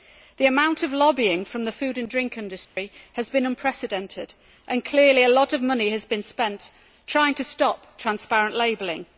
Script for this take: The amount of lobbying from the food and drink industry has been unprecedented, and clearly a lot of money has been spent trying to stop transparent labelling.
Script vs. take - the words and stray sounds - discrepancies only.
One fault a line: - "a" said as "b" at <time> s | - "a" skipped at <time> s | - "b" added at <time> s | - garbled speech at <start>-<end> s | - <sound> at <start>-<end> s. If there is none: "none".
- dropout at 2.6-2.8 s